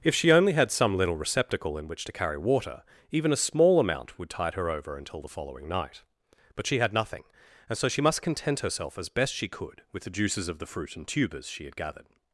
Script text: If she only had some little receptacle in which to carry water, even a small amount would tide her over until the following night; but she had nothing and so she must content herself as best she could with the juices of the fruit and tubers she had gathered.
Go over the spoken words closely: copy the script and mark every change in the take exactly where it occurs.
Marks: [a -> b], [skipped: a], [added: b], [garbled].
If she only had some little receptacle in which to carry water, even a small amount would tide her over until the following night; but she had nothing and so she must content herself as best she could with the juices of the fruit and tubers she had gathered.